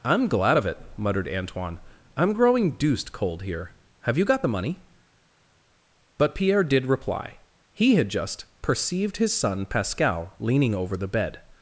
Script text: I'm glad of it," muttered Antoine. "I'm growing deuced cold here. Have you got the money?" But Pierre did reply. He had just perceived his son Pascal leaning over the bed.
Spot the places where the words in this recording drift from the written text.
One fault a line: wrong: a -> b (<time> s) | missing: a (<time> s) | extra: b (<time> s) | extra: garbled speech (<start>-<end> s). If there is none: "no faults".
no faults